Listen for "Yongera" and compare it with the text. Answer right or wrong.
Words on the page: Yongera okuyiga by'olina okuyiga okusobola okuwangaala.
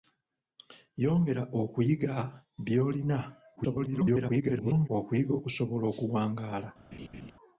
right